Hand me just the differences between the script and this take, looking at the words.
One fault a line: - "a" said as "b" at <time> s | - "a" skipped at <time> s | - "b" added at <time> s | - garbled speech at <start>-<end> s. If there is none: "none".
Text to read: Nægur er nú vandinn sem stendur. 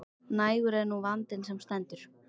none